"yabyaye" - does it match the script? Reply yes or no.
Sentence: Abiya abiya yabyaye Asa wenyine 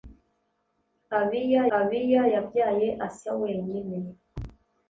yes